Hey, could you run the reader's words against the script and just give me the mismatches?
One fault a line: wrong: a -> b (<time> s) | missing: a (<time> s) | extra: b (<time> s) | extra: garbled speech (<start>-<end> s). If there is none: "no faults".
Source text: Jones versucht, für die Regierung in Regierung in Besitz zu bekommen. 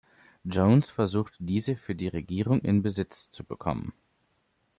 extra: diese (1.4 s)
missing: Regierung in (2.8 s)